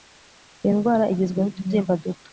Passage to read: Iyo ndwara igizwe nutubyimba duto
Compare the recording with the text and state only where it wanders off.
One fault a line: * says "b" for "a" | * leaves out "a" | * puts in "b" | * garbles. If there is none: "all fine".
all fine